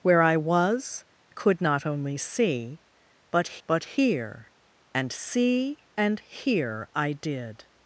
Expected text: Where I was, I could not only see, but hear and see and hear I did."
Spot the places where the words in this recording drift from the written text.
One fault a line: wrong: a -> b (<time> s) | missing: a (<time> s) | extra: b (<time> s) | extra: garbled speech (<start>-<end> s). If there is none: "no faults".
missing: I (1.1 s)
extra: but (3.7 s)